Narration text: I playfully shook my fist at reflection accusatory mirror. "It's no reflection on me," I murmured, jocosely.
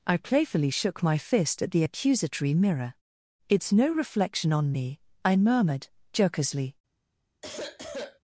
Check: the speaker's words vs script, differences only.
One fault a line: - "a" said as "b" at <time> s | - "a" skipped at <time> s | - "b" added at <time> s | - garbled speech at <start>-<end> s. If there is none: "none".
- "reflection" said as "the" at 1.7 s